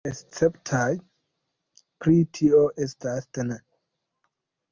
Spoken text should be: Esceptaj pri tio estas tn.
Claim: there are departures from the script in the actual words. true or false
false